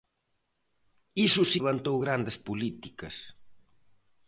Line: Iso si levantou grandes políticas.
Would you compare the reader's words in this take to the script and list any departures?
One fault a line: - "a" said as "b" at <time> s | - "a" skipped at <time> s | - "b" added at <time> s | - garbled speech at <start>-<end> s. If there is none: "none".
none